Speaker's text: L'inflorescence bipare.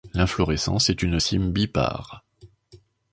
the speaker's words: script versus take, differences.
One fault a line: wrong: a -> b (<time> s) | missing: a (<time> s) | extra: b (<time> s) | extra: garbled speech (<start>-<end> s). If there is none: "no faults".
extra: est une cyme (0.9 s)